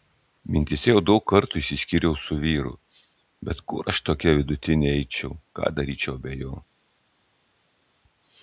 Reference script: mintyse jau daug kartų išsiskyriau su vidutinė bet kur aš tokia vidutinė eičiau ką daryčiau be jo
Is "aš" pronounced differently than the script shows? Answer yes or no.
no